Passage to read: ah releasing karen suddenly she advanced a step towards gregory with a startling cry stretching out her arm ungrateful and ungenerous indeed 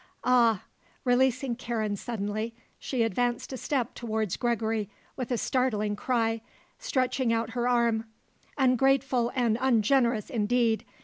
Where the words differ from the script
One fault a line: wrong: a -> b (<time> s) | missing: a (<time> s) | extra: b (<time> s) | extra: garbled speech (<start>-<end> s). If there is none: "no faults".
no faults